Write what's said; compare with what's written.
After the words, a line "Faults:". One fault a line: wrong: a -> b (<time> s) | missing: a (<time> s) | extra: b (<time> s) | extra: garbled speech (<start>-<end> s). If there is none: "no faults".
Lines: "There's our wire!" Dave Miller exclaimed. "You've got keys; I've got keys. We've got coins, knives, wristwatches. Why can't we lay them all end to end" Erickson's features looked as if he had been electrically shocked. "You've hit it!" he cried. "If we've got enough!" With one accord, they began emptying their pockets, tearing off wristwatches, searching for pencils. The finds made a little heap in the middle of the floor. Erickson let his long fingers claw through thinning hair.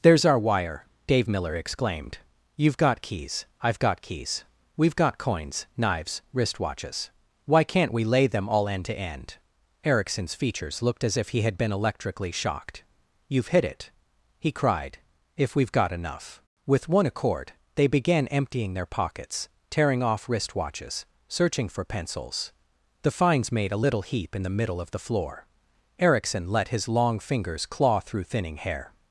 "There's our wire!" Dave Miller exclaimed. "You've got keys; I've got keys. We've got coins, knives, wristwatches. Why can't we lay them all end to end" Erickson's features looked as if he had been electrically shocked. "You've hit it!" he cried. "If we've got enough!" With one accord, they began emptying their pockets, tearing off wristwatches, searching for pencils. The finds made a little heap in the middle of the floor. Erickson let his long fingers claw through thinning hair.
Faults:
no faults